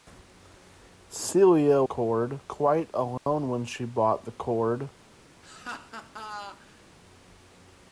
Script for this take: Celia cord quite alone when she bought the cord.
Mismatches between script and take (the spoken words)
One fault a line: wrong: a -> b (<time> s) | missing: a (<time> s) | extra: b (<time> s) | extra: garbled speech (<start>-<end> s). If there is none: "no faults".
no faults